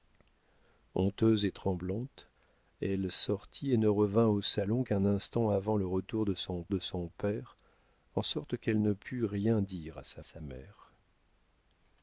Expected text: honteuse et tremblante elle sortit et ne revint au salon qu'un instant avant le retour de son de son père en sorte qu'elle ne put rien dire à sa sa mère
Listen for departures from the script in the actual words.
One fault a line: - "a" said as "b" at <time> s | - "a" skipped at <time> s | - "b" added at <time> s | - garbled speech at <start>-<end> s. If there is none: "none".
none